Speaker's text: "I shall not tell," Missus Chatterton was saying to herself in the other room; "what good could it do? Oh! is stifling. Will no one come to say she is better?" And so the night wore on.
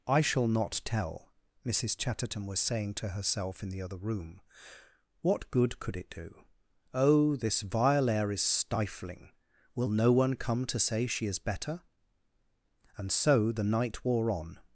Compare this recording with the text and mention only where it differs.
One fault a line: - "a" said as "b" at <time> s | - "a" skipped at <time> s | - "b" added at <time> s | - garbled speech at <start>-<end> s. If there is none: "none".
- "this vile air" added at 7.3 s